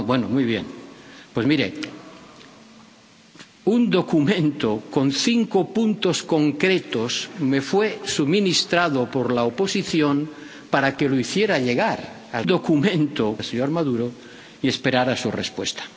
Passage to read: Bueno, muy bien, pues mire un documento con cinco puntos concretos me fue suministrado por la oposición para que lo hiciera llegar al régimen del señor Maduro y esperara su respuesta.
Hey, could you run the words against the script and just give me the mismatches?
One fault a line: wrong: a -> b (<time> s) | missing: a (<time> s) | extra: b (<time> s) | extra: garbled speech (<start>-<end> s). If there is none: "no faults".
wrong: régimen -> documento (12.5 s)